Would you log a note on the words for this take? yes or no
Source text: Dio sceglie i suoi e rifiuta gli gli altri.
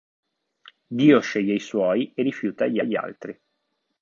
no